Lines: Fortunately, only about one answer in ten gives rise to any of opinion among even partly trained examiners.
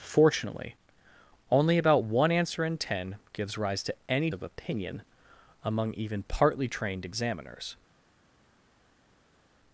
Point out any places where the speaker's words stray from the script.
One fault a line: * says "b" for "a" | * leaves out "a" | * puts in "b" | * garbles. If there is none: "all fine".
all fine